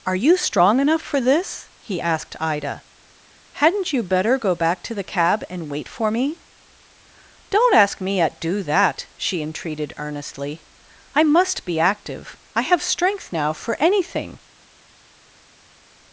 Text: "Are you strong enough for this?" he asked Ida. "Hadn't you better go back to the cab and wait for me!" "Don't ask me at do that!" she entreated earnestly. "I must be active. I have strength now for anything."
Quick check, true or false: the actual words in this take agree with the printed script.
true